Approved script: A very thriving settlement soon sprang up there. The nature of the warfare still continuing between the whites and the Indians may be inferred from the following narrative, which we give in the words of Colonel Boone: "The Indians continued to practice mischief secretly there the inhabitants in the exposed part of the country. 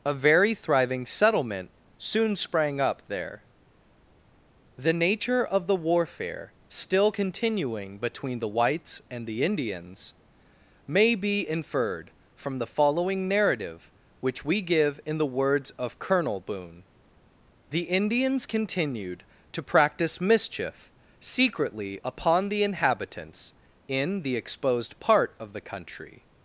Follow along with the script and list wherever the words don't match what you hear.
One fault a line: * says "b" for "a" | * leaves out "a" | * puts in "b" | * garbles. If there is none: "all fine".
* says "upon" for "there"